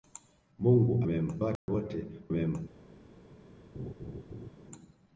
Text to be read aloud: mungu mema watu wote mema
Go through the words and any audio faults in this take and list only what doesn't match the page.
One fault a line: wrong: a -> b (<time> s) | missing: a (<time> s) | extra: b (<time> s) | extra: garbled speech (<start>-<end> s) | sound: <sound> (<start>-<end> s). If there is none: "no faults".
sound: dropout (1.6-1.7 s)
sound: laugh (3.7-4.5 s)